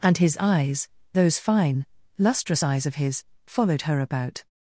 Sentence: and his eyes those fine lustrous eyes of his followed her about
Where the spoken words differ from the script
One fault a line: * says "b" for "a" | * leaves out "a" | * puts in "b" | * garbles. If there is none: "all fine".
all fine